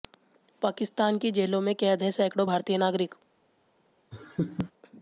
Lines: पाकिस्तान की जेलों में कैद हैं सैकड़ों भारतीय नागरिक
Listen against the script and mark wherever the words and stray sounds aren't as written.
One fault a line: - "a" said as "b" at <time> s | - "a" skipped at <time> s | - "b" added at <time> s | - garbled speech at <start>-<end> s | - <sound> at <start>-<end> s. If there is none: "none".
- laugh at 4.1-4.7 s